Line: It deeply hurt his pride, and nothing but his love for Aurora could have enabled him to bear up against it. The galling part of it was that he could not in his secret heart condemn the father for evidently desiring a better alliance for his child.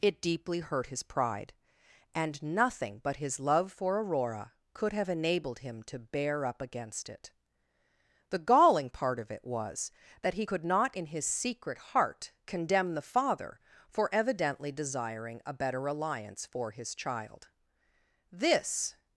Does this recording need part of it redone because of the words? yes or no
yes